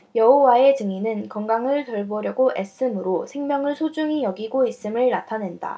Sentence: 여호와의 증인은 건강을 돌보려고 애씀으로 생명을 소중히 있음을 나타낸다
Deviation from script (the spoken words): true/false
true